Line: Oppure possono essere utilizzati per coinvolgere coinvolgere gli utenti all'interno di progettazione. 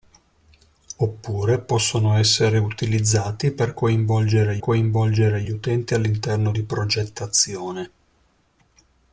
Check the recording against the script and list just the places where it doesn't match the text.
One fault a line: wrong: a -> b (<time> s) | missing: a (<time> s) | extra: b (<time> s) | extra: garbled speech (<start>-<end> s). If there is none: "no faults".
no faults